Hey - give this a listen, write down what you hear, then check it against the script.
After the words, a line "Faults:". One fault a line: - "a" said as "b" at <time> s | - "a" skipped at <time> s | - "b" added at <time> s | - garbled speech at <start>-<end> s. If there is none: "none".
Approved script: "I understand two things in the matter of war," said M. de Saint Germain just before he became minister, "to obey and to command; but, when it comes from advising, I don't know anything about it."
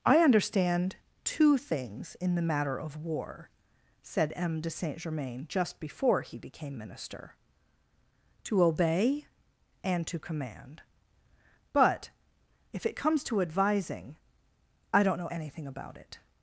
"I understand two things in the matter of war," said M. de Saint Germain just before he became minister, "to obey and to command; but, if it comes to advising, I don't know anything about it."
Faults:
- "when" said as "if" at 12.7 s
- "from" said as "to" at 13.2 s